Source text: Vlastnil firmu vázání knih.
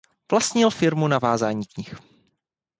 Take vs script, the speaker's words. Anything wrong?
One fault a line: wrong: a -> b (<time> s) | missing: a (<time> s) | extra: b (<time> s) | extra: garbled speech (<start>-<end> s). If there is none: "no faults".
extra: na (1.1 s)